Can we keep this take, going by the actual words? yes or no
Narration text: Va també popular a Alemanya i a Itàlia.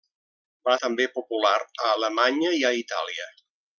yes